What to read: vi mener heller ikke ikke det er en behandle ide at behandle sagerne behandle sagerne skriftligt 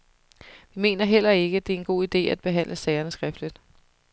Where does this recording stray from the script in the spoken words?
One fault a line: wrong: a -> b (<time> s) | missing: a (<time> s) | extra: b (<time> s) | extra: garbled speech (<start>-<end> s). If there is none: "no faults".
missing: ikke (1.6 s)
wrong: behandle -> god (1.8 s)
missing: behandle sagerne (3.1 s)